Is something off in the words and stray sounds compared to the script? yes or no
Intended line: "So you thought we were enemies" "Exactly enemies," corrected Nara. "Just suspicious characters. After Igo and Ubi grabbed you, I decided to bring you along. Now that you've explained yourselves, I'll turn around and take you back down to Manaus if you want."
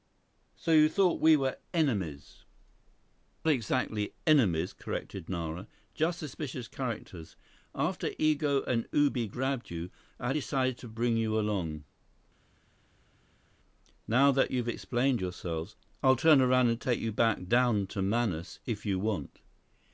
no